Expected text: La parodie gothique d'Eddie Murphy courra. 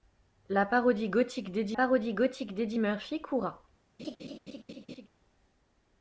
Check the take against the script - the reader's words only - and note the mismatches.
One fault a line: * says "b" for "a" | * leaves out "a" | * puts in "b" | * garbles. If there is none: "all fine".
* puts in "parodie gothique d'Eddie"